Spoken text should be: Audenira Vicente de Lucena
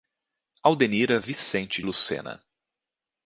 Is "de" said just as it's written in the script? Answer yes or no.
no